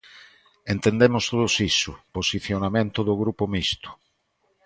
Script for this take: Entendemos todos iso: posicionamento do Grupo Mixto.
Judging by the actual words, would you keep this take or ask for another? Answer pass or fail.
pass